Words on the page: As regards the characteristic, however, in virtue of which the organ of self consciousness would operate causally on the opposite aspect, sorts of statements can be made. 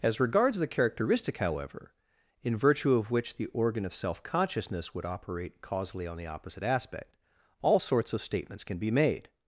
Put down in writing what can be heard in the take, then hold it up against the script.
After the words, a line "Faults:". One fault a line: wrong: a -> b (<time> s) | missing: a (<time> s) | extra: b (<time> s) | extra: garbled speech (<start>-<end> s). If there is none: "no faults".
As regards the characteristic, however, in virtue of which the organ of self consciousness would operate causally on the opposite aspect, all sorts of statements can be made.
Faults:
extra: all (7.6 s)